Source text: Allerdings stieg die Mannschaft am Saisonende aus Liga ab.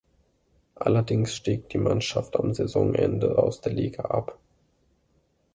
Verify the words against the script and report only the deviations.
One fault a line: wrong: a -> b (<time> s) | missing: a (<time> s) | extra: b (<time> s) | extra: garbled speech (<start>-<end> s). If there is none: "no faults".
extra: der (3.6 s)